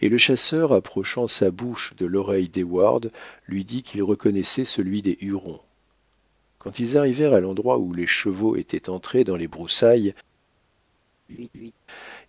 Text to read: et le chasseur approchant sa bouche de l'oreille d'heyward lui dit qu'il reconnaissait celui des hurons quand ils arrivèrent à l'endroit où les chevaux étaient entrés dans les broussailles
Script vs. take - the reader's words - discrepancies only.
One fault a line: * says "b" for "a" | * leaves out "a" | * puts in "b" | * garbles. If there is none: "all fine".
all fine